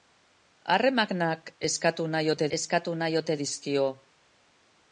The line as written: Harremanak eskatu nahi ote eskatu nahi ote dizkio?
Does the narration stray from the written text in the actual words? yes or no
no